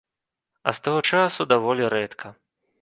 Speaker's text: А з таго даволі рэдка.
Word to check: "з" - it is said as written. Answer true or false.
true